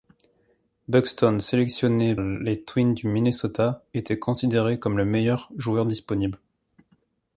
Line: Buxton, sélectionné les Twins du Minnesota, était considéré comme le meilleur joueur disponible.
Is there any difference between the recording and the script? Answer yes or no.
no